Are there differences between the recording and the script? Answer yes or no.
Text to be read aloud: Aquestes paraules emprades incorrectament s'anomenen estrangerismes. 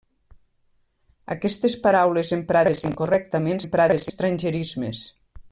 yes